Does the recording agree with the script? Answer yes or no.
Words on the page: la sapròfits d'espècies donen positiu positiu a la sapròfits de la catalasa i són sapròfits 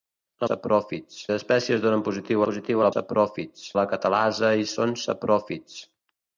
yes